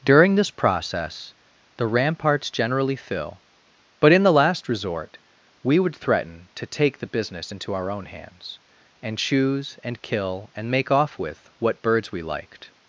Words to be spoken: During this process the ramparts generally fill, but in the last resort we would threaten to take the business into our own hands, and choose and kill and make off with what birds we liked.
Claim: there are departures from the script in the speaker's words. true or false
false